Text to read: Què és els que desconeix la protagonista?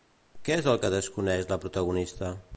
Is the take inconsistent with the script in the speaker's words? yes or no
yes